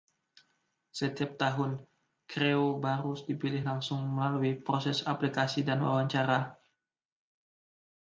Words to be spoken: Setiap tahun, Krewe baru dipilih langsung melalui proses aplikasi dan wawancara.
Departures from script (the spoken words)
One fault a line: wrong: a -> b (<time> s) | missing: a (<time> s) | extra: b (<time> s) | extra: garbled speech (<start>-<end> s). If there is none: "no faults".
no faults